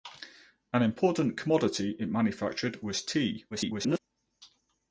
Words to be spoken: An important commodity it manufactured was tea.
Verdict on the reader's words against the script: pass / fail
fail